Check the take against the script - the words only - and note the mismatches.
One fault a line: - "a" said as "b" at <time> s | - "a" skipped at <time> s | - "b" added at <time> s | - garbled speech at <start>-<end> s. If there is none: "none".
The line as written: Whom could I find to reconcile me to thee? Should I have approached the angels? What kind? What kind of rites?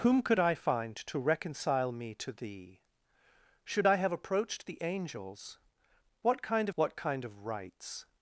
none